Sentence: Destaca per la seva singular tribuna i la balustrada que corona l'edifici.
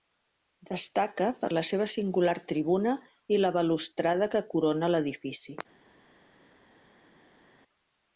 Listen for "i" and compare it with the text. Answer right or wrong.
right